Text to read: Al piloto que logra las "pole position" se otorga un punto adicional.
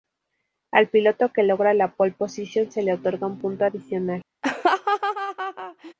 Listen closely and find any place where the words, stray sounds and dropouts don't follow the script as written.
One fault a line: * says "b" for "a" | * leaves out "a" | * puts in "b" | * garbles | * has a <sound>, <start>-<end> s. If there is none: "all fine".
* says "la" for "las"
* puts in "le"
* has a laugh, 4.4-5.9 s